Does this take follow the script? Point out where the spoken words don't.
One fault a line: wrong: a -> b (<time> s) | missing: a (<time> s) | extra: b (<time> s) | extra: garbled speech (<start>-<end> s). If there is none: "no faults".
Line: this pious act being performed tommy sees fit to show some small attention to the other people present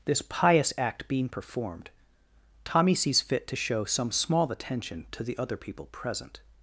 no faults